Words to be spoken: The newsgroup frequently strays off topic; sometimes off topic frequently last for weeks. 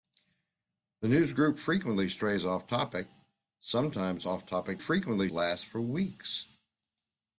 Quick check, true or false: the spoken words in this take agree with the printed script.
true